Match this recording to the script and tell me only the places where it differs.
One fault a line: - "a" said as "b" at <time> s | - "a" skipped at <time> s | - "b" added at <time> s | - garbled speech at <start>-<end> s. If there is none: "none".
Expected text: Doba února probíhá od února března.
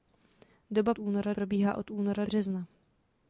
none